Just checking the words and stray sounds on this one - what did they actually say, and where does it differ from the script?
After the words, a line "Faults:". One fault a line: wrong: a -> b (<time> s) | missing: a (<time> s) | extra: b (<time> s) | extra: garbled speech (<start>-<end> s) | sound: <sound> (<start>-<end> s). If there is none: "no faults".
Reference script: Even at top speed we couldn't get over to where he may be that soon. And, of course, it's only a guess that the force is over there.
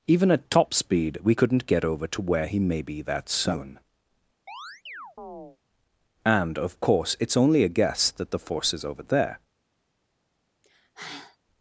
Even at top speed we couldn't get over to where he may be that soon. And, of course, it's only a guess that the force is over there.
Faults:
sound: chirp (4.5-5.6 s)
sound: sigh (10.6-11.4 s)